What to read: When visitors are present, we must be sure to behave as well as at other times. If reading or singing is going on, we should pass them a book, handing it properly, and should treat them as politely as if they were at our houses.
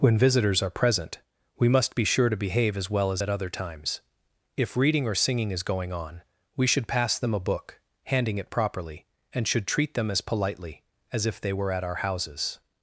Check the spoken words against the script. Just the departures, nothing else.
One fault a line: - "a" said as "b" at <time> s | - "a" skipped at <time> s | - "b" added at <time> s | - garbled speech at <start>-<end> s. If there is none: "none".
none